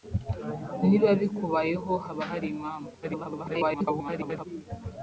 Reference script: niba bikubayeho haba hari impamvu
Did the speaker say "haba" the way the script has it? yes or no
yes